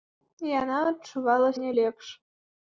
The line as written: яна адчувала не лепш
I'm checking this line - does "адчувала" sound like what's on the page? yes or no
yes